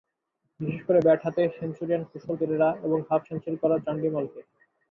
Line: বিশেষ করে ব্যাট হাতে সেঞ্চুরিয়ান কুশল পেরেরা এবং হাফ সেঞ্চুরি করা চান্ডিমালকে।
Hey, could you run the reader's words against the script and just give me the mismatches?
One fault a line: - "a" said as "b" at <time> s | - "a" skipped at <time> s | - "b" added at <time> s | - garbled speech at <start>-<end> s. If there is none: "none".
none